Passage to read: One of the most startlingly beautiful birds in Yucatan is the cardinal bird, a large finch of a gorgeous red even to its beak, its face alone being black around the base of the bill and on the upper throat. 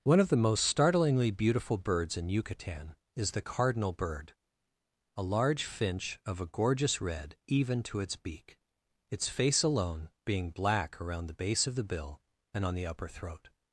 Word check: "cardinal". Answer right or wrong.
right